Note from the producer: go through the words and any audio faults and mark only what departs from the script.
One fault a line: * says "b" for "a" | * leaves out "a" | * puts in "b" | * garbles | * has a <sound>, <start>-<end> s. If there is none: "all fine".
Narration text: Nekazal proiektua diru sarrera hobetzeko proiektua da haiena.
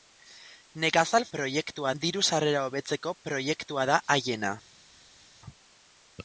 all fine